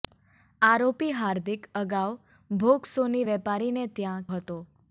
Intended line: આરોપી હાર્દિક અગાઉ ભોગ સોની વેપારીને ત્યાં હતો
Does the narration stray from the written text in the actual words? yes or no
no